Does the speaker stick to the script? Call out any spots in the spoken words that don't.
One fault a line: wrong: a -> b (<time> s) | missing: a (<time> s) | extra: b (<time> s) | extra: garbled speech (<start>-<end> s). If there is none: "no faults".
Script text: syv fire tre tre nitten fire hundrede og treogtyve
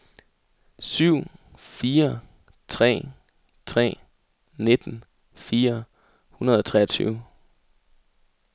no faults